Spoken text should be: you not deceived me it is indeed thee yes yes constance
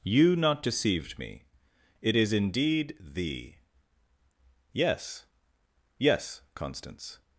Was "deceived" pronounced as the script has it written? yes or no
yes